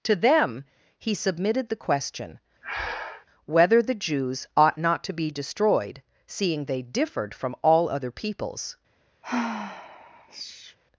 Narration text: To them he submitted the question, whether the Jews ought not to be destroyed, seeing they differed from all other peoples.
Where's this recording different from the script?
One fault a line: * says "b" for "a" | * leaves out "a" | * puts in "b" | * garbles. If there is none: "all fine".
all fine